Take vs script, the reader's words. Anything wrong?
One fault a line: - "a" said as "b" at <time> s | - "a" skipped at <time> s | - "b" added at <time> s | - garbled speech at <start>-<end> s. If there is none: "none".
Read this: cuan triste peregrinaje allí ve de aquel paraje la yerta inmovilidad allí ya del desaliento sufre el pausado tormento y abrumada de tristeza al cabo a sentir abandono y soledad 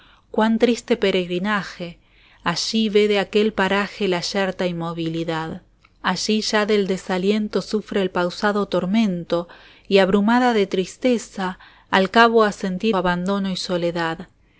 none